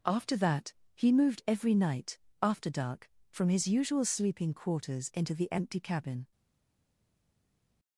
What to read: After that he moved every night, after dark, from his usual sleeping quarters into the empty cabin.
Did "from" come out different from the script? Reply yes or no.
no